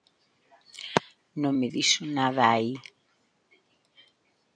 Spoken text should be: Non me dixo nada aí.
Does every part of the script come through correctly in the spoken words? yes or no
yes